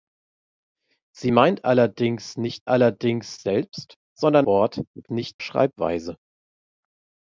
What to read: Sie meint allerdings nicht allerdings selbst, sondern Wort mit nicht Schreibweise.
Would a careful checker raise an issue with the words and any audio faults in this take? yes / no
no